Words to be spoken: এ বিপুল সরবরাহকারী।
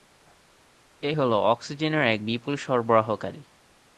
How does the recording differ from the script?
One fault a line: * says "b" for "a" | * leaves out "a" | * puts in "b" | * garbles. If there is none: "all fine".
* puts in "হলো অক্সিজেনের এক"